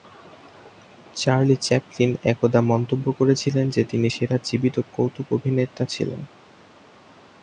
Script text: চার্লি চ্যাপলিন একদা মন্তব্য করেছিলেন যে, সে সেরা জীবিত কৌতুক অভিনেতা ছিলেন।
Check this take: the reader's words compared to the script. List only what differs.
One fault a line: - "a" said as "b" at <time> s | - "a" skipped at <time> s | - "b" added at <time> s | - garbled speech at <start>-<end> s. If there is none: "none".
- "সে" said as "তিনি" at 3.8 s